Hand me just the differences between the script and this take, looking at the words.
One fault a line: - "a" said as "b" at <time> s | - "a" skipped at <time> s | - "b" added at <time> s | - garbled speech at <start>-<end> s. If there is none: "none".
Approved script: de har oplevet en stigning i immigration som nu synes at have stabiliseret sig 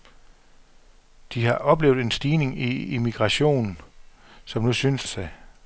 - "at have stabiliseret" skipped at 5.1 s